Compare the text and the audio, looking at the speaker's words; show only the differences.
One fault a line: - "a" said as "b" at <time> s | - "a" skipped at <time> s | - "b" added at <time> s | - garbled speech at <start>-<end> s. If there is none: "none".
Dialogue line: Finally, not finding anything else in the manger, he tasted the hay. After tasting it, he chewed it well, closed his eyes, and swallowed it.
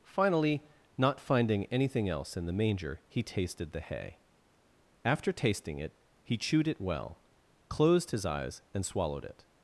none